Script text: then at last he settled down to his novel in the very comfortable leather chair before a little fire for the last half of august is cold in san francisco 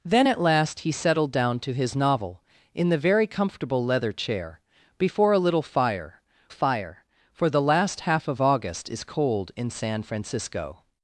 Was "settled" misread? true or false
false